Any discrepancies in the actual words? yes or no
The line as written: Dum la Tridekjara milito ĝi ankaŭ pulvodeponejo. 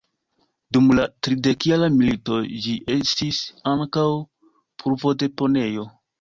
yes